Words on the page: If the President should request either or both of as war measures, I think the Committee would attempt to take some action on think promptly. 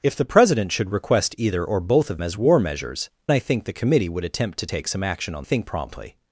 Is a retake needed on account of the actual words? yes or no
no